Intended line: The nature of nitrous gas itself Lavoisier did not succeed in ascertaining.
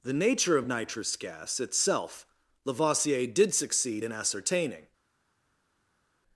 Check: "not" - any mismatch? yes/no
yes